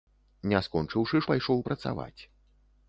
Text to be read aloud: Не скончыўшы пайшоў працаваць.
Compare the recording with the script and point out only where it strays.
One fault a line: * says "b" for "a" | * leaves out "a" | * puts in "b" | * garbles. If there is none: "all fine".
all fine